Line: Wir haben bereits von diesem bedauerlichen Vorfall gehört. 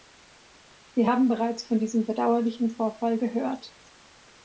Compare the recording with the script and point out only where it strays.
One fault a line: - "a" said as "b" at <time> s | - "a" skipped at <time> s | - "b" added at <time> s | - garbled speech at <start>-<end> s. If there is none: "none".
none